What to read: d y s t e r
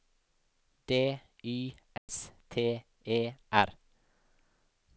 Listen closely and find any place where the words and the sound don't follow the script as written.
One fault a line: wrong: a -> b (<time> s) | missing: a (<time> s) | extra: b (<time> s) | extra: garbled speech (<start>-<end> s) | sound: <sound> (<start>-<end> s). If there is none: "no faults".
sound: dropout (2.0-2.1 s)